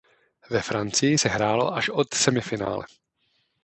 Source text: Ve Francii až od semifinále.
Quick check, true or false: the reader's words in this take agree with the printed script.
false